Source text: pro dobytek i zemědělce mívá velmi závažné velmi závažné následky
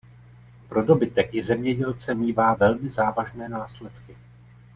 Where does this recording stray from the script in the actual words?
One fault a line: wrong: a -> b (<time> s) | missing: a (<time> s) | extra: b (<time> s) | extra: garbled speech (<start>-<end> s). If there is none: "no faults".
missing: velmi závažné (3.5 s)